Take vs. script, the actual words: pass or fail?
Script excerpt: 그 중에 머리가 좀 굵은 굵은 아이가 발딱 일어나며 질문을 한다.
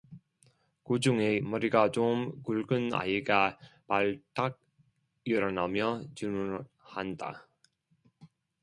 fail